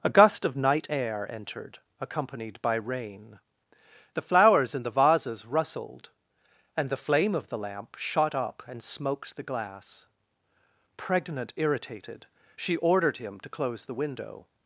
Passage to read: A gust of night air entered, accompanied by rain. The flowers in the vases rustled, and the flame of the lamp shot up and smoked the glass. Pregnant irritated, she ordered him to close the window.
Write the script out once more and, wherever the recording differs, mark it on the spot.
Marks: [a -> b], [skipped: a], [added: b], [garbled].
A gust of night air entered, accompanied by rain. The flowers in the vases rustled, and the flame of the lamp shot up and smoked the glass. Pregnant irritated, she ordered him to close the window.